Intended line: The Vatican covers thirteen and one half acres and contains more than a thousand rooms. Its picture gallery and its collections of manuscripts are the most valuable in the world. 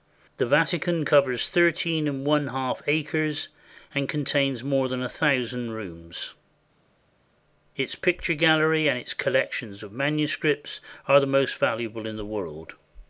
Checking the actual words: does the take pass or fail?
pass